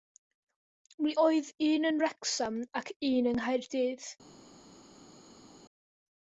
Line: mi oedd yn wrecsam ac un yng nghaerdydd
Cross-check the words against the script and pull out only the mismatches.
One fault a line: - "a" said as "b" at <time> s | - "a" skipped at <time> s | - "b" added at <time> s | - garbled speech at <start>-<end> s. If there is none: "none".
- "un" added at 1.7 s